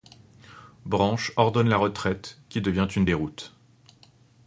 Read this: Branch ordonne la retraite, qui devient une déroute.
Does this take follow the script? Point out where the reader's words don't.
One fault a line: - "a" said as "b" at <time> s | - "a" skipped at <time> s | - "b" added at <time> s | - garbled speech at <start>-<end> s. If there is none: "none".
none